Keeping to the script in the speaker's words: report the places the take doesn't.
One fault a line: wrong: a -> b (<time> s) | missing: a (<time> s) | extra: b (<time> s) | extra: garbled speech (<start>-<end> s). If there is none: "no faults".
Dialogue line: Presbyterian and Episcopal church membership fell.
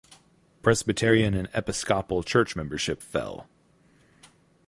no faults